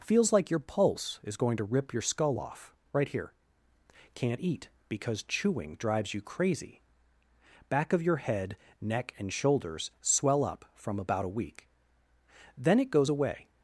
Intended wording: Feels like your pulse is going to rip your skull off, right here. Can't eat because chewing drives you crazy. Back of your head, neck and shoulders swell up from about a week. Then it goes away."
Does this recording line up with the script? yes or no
yes